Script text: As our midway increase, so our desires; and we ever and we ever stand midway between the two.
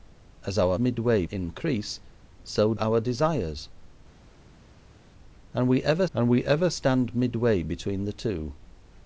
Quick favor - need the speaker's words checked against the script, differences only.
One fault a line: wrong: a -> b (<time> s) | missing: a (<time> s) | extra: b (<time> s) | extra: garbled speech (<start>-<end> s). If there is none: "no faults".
no faults